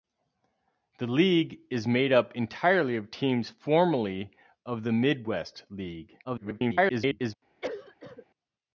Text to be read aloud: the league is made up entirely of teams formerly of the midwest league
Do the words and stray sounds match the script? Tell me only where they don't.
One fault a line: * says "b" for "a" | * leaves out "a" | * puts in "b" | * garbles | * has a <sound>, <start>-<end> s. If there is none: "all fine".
* garbles
* has a cough, 7.6-8.3 s